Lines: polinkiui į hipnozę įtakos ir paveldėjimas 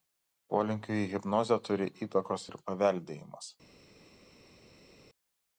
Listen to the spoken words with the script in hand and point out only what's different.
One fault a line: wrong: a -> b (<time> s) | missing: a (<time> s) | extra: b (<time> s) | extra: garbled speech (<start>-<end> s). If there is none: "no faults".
extra: turi (1.7 s)